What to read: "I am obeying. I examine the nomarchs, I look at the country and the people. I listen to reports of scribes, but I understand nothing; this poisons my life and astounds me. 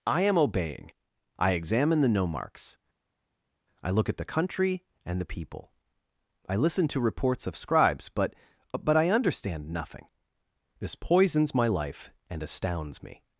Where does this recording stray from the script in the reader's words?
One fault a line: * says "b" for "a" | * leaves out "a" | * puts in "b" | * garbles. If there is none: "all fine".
* puts in "but"